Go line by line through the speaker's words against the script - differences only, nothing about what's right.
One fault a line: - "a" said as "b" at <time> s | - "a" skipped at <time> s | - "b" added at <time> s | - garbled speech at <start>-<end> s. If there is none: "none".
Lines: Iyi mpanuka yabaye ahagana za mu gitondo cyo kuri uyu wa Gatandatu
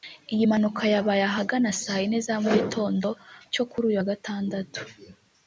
- "saa yine" added at 1.8 s